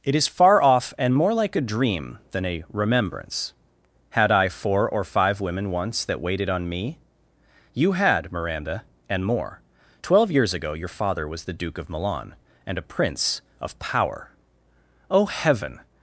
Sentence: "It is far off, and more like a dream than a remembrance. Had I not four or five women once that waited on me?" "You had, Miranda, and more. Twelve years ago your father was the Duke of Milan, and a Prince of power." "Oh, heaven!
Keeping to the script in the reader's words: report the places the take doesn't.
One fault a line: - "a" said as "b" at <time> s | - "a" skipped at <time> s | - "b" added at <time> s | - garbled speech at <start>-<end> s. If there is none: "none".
- "not" skipped at 4.5 s